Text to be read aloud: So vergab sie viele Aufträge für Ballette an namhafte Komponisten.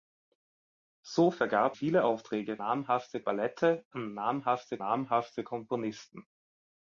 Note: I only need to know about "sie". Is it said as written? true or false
false